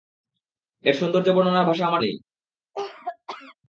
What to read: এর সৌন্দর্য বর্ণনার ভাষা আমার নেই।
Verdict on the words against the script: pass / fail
pass